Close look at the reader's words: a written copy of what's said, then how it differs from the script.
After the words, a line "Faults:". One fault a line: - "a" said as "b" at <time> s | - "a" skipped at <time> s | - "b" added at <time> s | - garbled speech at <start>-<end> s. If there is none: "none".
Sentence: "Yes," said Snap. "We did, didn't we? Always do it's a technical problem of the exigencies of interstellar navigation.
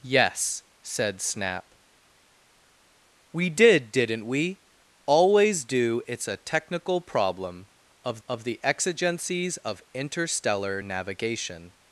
"Yes," said Snap. "We did, didn't we? Always do it's a technical problem of of the exigencies of interstellar navigation.
Faults:
- "of" added at 8.3 s